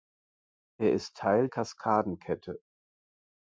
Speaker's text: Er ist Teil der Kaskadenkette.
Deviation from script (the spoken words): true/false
true